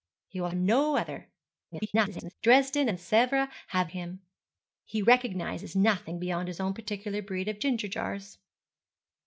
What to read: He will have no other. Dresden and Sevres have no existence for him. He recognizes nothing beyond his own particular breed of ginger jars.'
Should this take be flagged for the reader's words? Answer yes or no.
yes